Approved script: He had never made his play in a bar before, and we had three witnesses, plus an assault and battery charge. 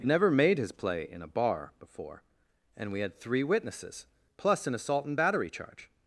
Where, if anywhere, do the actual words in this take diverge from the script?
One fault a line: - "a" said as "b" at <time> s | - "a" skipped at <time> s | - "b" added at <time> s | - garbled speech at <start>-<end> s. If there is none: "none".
- "had" skipped at 0.1 s